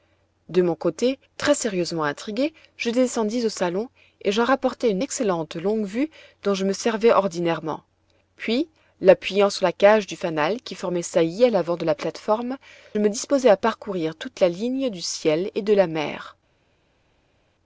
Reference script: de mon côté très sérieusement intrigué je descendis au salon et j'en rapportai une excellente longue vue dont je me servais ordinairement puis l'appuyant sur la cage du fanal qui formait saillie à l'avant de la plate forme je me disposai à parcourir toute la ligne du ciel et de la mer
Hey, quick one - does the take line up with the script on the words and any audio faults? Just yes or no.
no